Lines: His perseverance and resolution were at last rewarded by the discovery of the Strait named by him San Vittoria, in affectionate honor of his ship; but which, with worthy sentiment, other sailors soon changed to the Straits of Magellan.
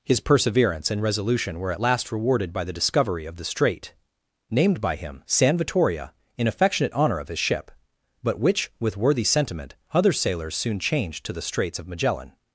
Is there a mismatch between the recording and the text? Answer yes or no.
no